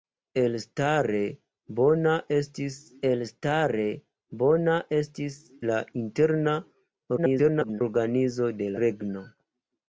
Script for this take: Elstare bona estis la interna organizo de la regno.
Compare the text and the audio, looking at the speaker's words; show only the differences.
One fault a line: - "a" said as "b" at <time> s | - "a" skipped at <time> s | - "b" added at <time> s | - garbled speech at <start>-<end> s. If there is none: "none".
- "elstare bona estis" added at 3.1 s
- garbled speech at 7.2-7.8 s
- "la" skipped at 8.7 s